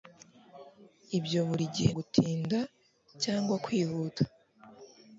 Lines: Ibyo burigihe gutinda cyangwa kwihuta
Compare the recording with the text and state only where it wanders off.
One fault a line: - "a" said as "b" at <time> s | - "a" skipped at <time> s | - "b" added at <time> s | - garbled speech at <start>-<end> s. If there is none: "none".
none